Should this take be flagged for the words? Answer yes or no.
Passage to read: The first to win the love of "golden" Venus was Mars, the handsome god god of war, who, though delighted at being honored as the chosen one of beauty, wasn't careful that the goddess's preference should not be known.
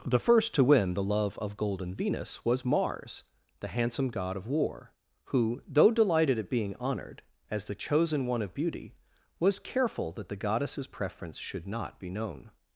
yes